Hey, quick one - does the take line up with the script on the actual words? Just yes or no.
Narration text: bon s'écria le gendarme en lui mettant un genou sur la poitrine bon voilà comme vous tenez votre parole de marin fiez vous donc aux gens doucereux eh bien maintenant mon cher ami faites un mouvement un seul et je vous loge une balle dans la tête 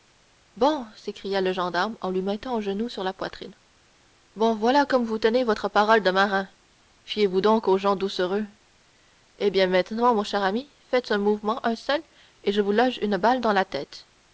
yes